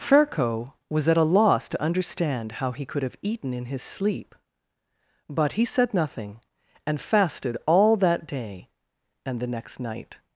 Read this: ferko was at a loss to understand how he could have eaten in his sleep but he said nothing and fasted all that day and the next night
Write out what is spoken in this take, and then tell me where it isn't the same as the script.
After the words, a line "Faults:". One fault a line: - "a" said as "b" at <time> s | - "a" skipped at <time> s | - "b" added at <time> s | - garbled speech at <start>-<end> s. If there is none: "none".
ferko was at a loss to understand how he could have eaten in his sleep but he said nothing and fasted all that day and the next night
Faults:
none